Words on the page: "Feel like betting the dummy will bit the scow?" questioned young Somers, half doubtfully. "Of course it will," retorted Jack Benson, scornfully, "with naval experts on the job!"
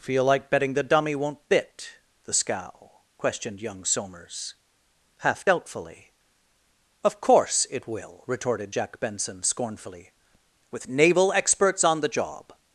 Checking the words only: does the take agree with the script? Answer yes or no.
no